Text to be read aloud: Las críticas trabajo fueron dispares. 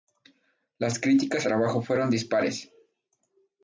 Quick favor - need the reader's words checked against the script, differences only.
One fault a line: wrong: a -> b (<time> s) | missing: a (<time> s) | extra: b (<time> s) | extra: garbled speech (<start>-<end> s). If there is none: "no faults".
no faults